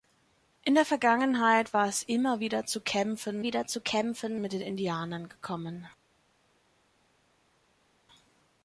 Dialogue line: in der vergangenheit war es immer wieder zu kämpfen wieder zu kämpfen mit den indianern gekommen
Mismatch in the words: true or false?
false